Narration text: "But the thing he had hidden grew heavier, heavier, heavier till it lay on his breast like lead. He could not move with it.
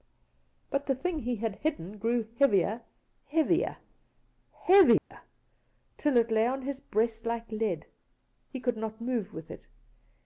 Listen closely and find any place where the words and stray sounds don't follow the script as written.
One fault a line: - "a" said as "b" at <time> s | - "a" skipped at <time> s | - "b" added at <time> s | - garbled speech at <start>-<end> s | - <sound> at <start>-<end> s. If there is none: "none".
- dropout at 5.0-5.1 s